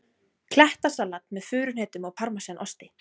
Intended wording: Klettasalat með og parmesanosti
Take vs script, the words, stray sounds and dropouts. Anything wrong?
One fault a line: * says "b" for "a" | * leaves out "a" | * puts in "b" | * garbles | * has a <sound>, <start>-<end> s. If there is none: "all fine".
* puts in "furuhnetum"